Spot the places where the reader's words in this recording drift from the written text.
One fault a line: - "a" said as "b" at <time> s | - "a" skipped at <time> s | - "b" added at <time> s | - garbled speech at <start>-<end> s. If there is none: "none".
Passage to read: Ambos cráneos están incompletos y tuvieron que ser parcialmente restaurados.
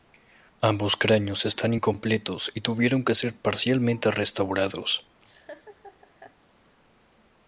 none